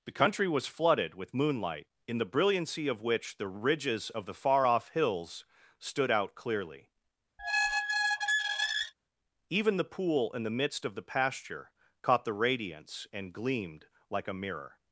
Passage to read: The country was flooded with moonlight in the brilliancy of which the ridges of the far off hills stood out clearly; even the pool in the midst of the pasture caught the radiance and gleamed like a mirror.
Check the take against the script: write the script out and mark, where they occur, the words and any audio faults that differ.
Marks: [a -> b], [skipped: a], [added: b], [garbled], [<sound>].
The country was flooded with moonlight in the brilliancy of which the ridges of the far off hills stood out clearly; [squeak] even the pool in the midst of the pasture caught the radiance and gleamed like a mirror.